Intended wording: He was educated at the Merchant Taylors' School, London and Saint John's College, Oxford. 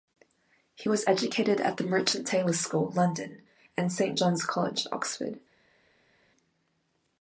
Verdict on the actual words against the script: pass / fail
pass